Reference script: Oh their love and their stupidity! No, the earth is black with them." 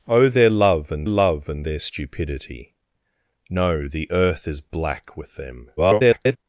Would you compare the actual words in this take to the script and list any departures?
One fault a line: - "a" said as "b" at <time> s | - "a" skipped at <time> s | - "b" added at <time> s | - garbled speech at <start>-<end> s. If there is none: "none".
- "love and" added at 1.1 s
- garbled speech at 5.8-6.4 s